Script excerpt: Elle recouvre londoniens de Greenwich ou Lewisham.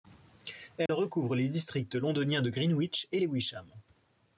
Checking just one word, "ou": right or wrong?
wrong